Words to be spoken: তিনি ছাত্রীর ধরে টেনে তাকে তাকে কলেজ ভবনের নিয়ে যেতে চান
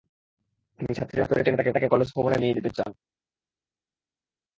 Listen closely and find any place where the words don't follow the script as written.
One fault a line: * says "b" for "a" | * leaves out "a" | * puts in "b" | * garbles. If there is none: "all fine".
all fine